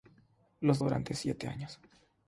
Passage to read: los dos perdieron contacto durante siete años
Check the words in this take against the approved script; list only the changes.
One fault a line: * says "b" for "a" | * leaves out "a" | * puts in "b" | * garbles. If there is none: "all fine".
* leaves out "dos perdieron contacto"